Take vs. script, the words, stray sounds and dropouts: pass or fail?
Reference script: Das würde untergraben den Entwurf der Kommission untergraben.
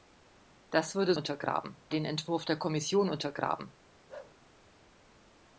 fail